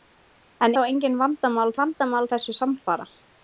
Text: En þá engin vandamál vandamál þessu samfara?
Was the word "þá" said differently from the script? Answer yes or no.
no